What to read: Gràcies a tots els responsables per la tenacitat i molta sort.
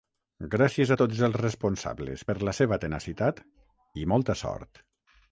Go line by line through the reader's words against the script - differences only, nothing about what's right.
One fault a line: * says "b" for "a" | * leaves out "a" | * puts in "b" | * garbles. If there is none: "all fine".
* puts in "seva"